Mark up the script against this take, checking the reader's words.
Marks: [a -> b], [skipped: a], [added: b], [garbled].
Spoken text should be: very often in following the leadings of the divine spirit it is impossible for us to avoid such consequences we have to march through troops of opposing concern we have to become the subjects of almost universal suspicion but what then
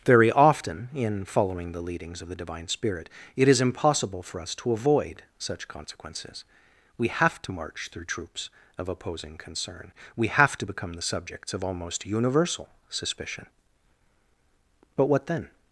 very often in following the leadings of the divine spirit it is impossible for us to avoid such consequences we have to march through troops of opposing concern we have to become the subjects of almost universal suspicion but what then